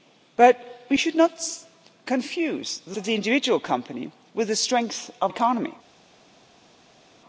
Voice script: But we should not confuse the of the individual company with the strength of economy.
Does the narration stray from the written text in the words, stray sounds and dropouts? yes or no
no